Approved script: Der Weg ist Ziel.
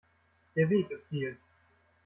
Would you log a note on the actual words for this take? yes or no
no